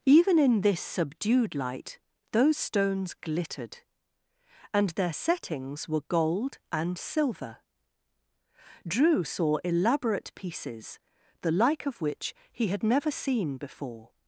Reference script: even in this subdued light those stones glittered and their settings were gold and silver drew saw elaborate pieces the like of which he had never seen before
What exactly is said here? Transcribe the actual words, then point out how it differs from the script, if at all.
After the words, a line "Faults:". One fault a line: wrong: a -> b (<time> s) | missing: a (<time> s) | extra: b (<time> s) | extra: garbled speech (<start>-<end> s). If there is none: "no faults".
even in this subdued light those stones glittered and their settings were gold and silver drew saw elaborate pieces the like of which he had never seen before
Faults:
no faults